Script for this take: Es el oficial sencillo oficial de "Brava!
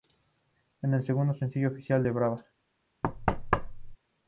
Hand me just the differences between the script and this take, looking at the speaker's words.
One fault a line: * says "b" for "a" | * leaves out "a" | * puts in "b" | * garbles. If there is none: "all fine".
* says "segundo" for "oficial"